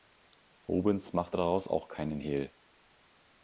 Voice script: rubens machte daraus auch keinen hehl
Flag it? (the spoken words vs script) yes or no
no